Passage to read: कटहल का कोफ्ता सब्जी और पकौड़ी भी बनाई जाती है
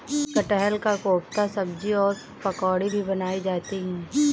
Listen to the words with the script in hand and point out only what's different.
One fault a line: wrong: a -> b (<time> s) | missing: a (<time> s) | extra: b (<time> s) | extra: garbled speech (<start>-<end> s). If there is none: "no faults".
no faults